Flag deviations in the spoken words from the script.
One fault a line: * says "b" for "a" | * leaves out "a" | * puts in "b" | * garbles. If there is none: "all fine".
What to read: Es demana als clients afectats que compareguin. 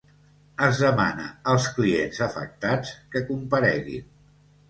all fine